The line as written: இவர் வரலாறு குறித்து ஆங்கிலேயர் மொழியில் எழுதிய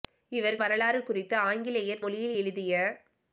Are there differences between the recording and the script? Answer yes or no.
no